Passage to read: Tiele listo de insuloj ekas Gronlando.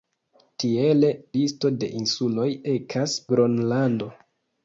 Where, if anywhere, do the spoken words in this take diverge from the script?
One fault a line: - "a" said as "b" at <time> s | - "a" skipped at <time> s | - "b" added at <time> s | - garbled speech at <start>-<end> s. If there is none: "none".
none